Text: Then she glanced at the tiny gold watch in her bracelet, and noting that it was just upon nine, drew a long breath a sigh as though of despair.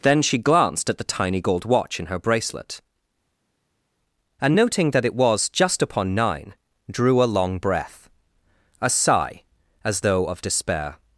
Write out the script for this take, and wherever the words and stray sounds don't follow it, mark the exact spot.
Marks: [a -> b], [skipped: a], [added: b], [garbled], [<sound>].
Then she glanced at the tiny gold watch in her bracelet, and noting that it was just upon nine, drew a long breath a sigh as though of despair.